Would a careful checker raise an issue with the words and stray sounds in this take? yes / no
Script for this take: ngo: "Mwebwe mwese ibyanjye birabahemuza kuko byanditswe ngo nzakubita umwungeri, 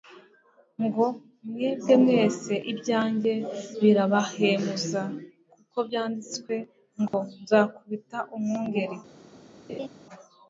yes